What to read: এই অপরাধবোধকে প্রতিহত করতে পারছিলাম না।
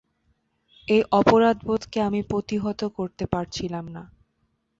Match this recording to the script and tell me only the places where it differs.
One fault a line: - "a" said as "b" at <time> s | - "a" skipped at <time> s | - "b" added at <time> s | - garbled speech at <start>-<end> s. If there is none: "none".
- "আমি" added at 2.0 s